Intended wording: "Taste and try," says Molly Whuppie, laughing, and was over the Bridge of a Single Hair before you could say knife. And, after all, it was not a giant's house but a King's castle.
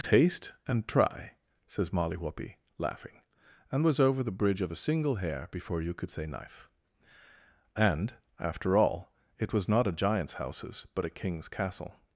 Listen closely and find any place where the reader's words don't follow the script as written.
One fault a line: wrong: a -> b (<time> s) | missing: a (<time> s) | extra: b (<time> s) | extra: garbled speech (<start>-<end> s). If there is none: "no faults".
wrong: house -> houses (10.3 s)